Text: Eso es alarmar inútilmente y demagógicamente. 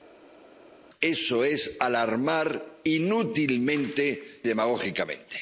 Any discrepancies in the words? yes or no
yes